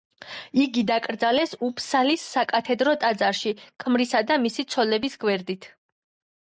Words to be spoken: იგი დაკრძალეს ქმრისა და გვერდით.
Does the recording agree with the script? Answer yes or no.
no